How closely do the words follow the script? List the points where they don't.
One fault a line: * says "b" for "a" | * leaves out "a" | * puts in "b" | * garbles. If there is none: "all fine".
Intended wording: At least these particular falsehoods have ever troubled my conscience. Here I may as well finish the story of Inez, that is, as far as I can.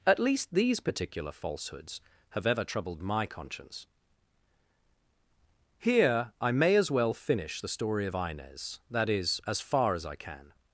all fine